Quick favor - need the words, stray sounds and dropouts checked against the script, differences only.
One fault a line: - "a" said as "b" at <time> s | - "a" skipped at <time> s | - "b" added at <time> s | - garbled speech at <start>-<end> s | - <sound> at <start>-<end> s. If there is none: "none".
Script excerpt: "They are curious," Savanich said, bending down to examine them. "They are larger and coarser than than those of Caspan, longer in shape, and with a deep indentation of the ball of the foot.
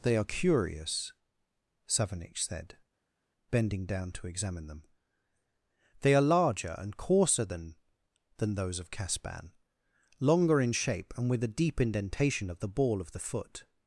none